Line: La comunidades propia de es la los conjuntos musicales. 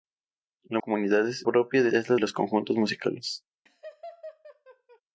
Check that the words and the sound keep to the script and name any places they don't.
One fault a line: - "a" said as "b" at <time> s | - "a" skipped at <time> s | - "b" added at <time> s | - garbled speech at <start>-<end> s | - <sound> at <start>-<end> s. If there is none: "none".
- laugh at 3.7-5.0 s